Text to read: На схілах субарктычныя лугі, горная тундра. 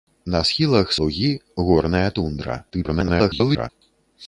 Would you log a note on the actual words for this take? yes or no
yes